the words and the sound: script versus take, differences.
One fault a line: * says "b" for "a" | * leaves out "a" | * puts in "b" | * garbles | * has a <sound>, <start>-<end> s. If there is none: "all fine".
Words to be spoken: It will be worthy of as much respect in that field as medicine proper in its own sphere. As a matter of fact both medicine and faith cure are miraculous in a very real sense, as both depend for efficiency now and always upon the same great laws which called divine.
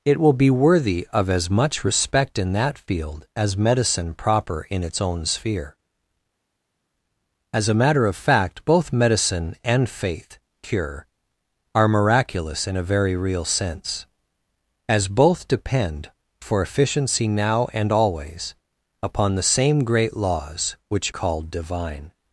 all fine